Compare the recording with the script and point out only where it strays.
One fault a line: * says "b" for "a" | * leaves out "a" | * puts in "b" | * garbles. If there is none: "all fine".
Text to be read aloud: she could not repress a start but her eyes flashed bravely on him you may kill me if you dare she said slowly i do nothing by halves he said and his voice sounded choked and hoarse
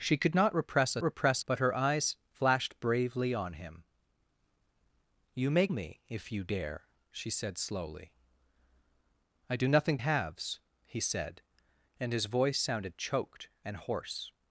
* says "repress" for "start"
* leaves out "kill"
* leaves out "by"